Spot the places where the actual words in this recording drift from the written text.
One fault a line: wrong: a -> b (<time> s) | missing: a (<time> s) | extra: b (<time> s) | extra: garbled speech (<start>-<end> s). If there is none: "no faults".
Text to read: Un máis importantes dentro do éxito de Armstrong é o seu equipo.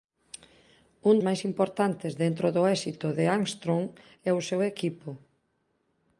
no faults